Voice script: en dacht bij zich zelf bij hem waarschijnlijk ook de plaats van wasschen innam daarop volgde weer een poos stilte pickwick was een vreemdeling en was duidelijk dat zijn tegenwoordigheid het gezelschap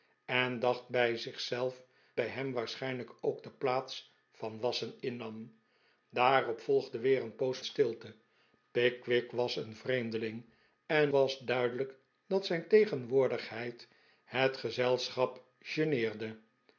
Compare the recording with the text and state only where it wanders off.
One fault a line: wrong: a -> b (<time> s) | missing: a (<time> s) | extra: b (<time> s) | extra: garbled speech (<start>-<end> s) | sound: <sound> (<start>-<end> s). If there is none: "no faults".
no faults